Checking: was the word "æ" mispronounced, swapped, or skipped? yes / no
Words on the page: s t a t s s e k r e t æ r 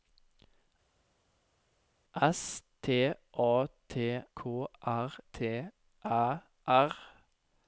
no